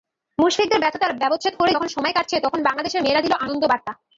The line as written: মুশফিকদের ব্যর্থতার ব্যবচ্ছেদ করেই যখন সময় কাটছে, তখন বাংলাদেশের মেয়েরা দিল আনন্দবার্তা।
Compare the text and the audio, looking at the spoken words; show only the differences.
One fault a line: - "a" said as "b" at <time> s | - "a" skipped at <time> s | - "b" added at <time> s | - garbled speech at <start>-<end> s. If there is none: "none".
none